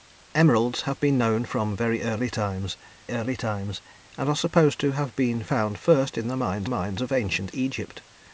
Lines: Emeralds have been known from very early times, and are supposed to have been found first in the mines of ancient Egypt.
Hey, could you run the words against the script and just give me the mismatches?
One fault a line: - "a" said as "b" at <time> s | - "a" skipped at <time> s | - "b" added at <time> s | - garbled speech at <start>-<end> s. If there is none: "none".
- "early times" added at 3.1 s
- "mines" added at 6.7 s